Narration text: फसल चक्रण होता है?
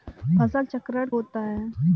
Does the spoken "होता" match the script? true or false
true